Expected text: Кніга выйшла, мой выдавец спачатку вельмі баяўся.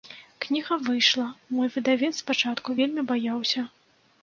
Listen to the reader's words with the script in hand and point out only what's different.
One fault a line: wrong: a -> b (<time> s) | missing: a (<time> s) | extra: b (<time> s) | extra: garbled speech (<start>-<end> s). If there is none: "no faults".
no faults